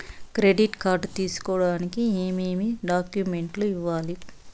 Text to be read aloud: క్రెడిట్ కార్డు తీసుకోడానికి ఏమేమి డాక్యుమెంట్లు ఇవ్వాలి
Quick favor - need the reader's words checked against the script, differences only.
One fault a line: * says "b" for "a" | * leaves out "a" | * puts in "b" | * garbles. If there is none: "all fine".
all fine